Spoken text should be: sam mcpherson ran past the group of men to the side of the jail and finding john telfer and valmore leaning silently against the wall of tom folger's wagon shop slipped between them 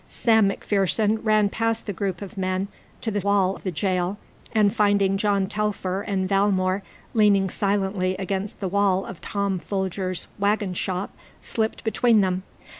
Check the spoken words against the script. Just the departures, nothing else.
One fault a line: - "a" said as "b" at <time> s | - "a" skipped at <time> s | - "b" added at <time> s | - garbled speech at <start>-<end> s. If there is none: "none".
- "side" said as "wall" at 3.2 s